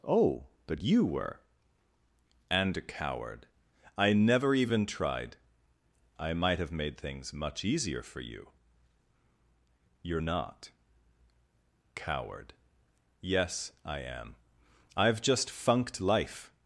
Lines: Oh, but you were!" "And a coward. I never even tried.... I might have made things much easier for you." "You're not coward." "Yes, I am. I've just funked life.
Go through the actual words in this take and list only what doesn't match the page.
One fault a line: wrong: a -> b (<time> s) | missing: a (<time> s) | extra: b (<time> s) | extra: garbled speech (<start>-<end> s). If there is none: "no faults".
no faults